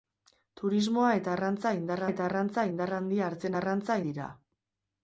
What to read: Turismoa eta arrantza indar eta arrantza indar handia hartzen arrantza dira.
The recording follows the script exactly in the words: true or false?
true